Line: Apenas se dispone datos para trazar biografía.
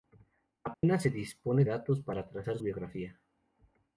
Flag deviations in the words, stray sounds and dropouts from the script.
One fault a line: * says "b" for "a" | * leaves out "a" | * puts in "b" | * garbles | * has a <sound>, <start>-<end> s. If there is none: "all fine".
* has a dropout, 0.7-0.8 s